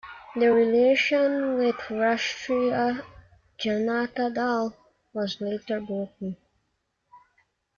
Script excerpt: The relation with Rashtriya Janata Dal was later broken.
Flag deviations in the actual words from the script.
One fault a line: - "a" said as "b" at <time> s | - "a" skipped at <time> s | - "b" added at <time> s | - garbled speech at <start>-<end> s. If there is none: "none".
none